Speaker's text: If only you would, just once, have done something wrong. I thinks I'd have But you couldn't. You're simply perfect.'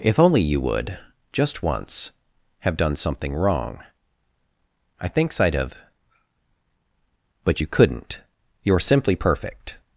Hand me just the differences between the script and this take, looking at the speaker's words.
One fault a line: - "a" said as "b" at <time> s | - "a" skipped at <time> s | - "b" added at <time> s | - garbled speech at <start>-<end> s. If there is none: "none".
none